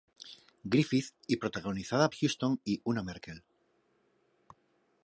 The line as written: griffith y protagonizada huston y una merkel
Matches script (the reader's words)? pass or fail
pass